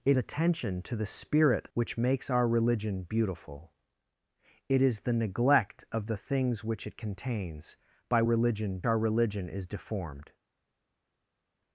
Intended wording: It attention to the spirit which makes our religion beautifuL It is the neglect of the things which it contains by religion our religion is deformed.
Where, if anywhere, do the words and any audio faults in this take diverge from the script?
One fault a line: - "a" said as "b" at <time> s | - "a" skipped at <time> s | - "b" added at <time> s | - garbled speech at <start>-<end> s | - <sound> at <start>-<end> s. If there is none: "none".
none